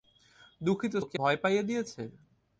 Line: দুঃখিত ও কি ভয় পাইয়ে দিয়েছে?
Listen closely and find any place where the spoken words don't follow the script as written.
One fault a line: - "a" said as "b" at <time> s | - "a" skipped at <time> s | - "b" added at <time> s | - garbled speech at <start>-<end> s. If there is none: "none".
none